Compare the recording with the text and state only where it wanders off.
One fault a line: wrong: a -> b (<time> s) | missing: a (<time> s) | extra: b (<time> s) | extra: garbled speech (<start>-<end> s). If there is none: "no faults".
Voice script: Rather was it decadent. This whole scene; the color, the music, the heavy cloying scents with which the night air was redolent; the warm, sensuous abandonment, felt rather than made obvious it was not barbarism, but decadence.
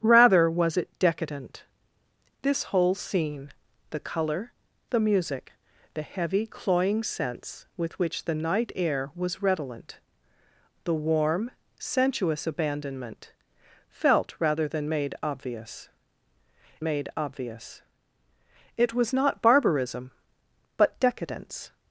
extra: made obvious (16.8 s)